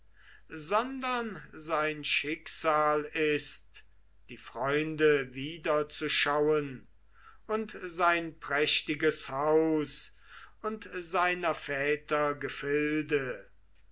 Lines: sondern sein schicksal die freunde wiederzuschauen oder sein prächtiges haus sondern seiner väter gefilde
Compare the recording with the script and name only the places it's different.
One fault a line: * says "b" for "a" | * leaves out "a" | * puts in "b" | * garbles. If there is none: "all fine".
* puts in "ist"
* says "und" for "oder"
* says "und" for "sondern"